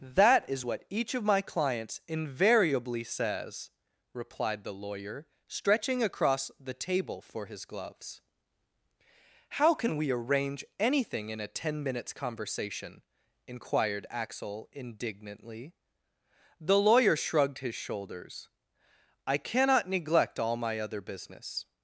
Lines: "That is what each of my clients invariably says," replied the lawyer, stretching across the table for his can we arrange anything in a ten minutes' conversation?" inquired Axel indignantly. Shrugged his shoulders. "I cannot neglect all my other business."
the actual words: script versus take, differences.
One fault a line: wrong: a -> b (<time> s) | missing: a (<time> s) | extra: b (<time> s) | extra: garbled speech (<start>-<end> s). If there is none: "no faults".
extra: gloves How (7.7 s)
extra: The lawyer (16.6 s)